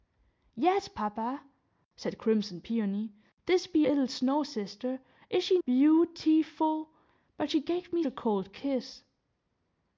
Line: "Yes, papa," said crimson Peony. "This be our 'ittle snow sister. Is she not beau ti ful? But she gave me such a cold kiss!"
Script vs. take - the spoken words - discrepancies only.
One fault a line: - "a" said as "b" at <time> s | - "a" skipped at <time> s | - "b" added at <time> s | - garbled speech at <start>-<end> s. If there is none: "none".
- "our" skipped at 3.9 s
- "not" skipped at 5.6 s
- "such" skipped at 8.0 s